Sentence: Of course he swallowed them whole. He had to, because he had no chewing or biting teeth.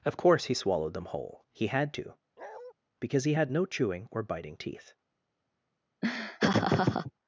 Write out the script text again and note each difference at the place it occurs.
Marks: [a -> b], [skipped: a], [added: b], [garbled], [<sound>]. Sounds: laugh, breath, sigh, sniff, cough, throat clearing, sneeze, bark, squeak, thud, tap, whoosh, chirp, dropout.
Of course he swallowed them whole. He had to, [bark] because he had no chewing or biting teeth. [laugh]